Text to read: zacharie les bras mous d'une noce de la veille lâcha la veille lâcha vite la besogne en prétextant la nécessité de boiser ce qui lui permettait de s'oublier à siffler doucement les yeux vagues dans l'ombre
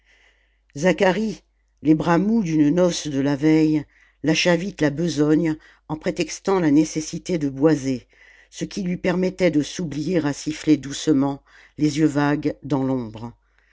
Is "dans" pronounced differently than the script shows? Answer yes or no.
no